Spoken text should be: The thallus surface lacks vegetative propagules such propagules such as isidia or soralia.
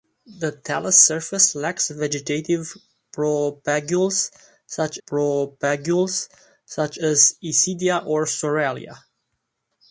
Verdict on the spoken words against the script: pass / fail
pass